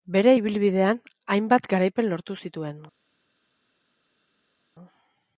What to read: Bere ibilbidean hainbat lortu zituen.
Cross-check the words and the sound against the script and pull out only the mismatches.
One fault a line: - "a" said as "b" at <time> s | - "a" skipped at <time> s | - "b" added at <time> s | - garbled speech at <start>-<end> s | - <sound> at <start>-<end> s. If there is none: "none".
- "garaipen" added at 1.8 s